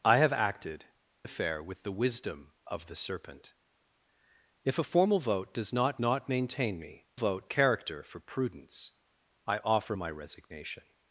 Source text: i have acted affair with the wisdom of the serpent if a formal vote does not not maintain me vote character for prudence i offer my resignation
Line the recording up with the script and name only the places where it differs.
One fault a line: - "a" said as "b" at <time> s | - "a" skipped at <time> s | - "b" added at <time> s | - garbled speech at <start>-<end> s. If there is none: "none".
none